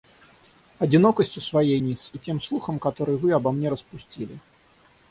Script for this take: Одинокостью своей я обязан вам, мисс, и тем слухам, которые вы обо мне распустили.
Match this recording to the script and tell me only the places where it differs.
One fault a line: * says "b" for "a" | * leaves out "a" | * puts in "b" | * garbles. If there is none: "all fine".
* leaves out "я обязан вам"